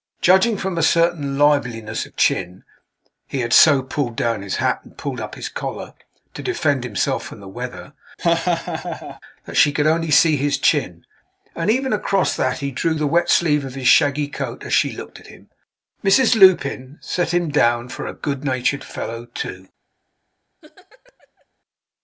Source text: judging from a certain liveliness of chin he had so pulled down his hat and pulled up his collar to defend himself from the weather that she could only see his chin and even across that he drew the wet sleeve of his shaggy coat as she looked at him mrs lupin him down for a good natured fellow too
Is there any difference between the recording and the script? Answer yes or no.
yes